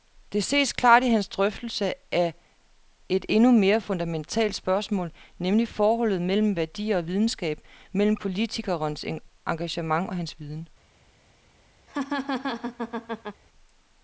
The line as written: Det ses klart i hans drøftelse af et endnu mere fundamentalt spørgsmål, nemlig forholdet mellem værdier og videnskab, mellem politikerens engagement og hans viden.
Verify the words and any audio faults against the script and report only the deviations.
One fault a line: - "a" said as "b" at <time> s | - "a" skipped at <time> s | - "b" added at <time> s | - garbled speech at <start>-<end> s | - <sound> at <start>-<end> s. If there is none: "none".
- laugh at 11.9-13.4 s